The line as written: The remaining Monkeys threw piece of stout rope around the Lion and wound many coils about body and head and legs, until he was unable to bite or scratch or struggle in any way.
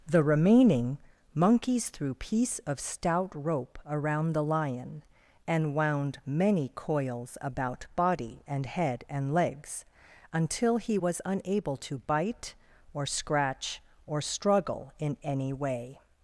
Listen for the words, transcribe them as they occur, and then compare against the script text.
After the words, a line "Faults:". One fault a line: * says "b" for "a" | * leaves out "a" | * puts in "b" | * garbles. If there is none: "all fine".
The remaining Monkeys threw piece of stout rope around the Lion and wound many coils about body and head and legs, until he was unable to bite or scratch or struggle in any way.
Faults:
all fine